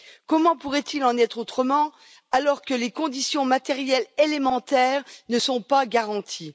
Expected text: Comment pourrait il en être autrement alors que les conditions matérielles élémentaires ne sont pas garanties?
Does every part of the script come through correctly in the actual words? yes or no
yes